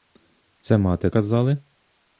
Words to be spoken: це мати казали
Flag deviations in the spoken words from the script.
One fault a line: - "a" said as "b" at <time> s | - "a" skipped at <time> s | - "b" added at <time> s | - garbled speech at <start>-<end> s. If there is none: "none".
none